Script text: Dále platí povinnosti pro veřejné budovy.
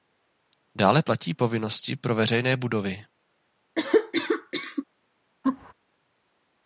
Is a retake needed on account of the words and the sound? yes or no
yes